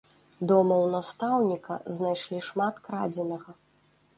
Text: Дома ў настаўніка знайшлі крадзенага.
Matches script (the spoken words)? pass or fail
fail